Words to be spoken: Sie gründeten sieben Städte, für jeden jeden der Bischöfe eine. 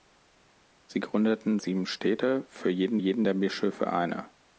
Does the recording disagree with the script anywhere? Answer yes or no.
no